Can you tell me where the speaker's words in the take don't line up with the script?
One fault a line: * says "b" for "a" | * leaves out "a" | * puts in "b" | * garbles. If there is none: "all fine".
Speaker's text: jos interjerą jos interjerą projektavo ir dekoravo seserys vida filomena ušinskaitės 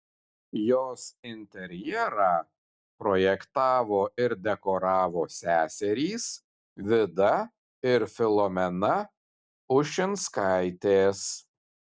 * leaves out "jos interjerą"
* puts in "ir"